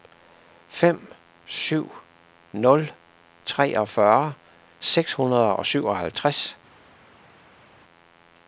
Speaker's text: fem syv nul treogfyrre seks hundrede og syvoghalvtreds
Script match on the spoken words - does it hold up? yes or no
yes